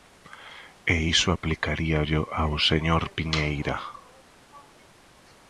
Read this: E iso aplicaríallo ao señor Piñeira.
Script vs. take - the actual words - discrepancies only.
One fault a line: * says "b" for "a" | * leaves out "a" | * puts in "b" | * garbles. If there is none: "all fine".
all fine